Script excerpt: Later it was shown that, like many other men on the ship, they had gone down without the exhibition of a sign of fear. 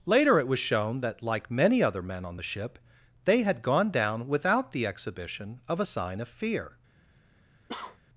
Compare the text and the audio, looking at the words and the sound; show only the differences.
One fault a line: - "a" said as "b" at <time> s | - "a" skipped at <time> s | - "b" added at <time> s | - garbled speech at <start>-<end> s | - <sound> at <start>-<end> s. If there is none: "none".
- cough at 7.7-8.0 s